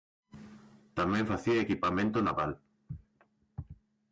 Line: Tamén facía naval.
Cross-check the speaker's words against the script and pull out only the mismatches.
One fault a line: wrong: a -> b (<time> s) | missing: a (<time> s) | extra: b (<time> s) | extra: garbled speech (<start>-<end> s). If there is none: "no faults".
extra: equipamento (1.6 s)